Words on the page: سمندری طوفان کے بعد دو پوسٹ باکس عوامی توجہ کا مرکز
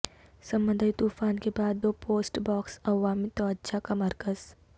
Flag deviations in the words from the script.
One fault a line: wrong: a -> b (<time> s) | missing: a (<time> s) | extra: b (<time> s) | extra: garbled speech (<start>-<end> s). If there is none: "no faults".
no faults